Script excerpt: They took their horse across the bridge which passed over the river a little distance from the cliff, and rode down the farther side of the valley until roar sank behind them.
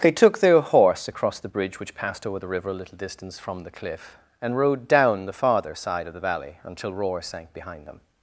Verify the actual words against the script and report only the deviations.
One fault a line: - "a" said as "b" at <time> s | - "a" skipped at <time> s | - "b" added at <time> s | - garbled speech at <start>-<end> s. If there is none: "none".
none